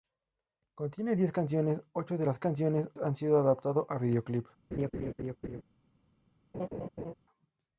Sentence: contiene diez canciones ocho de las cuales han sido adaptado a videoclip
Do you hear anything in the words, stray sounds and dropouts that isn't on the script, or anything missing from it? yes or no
yes